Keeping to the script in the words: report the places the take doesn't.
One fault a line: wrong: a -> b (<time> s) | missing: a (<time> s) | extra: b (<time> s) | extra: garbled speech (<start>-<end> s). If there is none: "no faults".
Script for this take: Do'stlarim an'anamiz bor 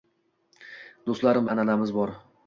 no faults